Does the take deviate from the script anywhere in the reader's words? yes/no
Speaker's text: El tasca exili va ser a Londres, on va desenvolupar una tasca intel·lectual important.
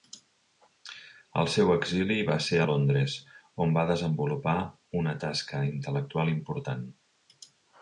yes